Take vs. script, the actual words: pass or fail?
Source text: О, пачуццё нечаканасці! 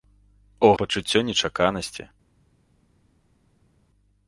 pass